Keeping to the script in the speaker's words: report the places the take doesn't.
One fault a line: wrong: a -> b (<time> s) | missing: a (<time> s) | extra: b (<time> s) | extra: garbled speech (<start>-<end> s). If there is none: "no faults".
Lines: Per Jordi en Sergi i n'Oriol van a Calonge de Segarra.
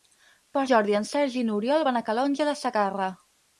no faults